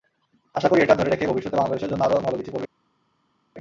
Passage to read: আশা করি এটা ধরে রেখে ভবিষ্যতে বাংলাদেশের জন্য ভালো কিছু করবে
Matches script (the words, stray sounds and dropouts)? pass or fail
fail